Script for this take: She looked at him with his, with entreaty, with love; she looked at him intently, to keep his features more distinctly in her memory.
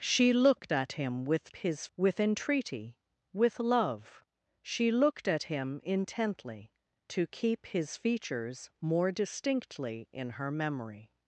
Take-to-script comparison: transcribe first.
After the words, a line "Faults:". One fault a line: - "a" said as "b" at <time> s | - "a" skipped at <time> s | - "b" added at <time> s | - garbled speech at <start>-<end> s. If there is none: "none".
She looked at him with his, with entreaty, with love; she looked at him intently, to keep his features more distinctly in her memory.
Faults:
none